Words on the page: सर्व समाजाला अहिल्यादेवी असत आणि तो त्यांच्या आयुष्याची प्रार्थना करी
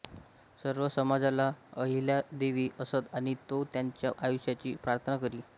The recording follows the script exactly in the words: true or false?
true